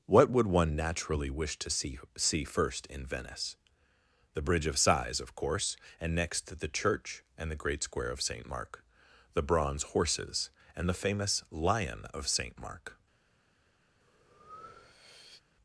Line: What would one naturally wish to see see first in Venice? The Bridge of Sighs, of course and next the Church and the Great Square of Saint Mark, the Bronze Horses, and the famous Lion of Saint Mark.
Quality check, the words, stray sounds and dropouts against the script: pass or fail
fail